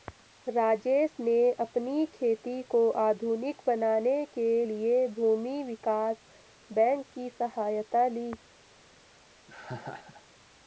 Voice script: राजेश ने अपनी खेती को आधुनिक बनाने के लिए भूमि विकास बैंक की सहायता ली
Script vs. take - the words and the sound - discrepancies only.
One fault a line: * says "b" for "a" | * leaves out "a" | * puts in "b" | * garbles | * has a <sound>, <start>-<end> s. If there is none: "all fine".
* has a laugh, 9.5-10.3 s